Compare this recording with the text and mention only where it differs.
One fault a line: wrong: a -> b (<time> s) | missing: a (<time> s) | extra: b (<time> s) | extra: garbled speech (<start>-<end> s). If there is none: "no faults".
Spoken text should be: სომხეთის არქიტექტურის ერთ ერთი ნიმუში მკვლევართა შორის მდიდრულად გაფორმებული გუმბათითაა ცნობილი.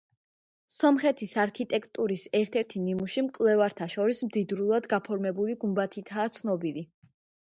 no faults